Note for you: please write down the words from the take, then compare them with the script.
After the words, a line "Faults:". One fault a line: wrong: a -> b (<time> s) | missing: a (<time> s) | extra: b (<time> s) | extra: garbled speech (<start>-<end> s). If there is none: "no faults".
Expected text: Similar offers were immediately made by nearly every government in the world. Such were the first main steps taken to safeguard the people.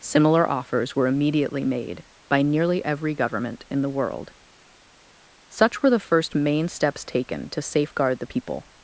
Similar offers were immediately made by nearly every government in the world. Such were the first main steps taken to safeguard the people.
Faults:
no faults